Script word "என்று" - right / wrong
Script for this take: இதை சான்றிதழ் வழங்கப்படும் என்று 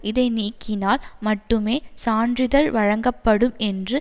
right